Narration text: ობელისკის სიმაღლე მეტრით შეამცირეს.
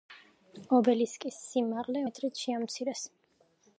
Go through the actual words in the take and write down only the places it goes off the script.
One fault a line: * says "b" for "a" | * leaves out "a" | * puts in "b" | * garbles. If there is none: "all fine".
all fine